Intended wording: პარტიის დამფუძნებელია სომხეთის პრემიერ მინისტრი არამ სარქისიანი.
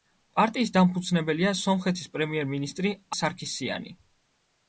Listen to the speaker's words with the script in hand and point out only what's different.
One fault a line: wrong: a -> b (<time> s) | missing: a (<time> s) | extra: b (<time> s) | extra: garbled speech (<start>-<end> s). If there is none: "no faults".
missing: არამ (3.0 s)